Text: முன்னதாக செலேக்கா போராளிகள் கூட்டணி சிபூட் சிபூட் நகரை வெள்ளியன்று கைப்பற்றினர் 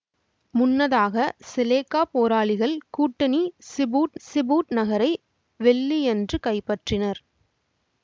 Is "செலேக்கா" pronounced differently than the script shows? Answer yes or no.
no